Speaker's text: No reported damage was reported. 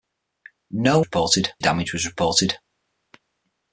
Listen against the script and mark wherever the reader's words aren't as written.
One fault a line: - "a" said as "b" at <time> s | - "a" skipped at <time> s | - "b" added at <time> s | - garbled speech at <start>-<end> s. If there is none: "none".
none